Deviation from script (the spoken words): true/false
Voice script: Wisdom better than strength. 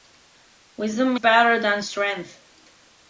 false